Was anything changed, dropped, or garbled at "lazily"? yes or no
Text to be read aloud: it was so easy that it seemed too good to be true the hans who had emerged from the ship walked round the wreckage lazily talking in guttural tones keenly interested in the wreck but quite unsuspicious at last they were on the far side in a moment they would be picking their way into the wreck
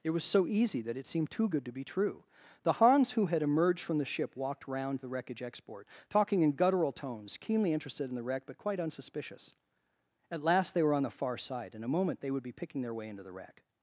yes